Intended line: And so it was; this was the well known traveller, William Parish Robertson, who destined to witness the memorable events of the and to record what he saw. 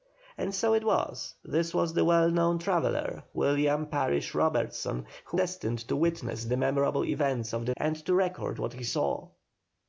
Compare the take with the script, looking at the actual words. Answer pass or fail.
pass